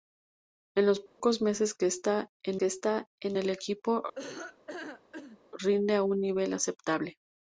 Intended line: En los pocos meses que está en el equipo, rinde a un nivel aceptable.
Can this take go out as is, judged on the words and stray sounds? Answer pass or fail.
fail